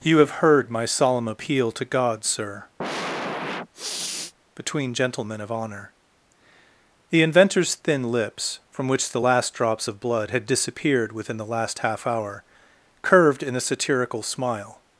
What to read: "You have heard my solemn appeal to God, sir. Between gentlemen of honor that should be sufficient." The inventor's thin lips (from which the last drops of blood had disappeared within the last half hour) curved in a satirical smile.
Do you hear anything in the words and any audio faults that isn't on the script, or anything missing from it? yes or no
yes